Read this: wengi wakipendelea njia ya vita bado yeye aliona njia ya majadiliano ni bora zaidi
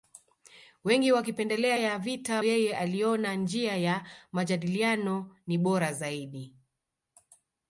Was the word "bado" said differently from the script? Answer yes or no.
yes